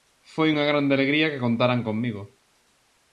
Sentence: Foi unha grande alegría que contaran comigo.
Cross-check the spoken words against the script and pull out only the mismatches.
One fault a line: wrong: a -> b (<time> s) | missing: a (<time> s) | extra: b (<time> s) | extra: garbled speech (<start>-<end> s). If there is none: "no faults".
no faults